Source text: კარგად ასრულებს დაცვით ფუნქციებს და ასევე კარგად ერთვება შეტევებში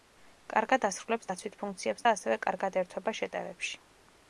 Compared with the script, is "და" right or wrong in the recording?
right